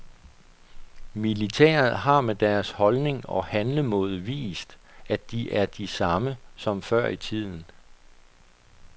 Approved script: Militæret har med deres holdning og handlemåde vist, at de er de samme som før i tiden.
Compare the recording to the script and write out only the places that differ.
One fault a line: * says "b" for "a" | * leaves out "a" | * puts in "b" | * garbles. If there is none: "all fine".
all fine